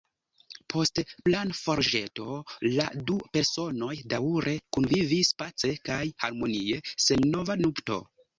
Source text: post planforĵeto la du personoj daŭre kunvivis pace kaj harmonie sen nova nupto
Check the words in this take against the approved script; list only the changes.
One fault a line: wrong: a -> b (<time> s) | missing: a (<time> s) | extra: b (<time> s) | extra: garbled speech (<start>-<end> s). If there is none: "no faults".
no faults